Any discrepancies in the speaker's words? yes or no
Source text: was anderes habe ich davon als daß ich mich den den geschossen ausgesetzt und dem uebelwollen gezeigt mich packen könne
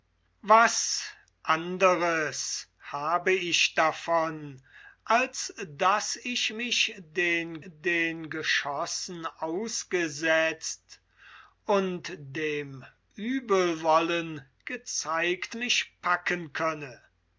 no